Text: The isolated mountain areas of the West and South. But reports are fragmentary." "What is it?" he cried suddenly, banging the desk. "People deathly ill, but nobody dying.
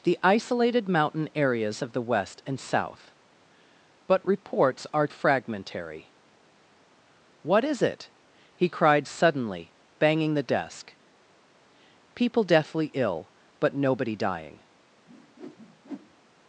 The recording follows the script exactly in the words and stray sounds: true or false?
false